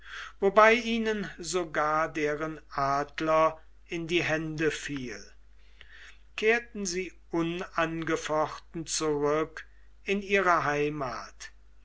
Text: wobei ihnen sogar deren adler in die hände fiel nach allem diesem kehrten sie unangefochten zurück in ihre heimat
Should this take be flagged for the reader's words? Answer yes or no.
yes